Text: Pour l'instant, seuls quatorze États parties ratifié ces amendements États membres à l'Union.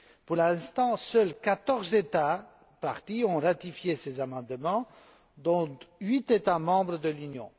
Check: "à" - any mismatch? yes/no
yes